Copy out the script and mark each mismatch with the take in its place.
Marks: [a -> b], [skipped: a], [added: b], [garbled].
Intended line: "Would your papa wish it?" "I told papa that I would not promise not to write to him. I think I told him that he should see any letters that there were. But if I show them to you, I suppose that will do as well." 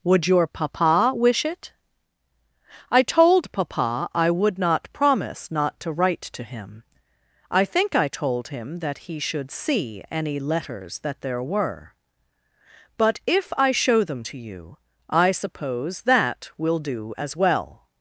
"Would your papa wish it?" "I told papa [skipped: that] I would not promise not to write to him. I think I told him that he should see any letters that there were. But if I show them to you, I suppose that will do as well."